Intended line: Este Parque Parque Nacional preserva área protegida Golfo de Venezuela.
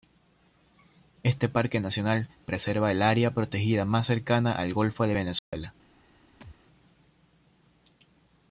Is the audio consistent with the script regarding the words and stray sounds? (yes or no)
no